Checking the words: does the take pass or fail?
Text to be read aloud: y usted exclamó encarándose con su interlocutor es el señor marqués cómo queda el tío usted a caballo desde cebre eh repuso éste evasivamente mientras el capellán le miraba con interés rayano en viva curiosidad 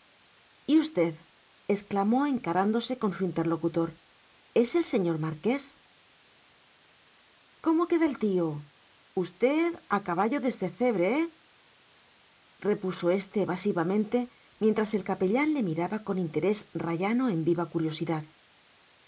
pass